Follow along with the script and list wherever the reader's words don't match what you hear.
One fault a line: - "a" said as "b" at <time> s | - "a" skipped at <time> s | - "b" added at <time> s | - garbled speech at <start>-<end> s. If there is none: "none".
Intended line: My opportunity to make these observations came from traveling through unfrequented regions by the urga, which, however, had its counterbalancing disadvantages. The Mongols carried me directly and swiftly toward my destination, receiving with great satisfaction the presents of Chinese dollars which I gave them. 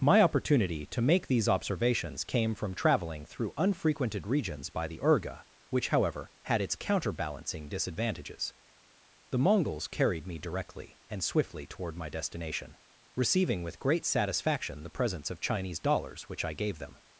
none